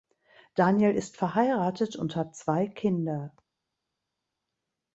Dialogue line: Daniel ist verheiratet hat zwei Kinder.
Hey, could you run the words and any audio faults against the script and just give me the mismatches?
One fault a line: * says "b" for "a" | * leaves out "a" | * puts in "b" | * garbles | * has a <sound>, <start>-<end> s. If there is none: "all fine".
* puts in "und"